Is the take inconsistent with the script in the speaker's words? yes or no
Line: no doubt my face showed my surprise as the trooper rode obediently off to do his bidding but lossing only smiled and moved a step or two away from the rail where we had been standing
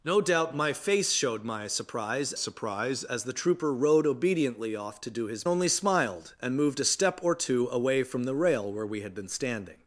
yes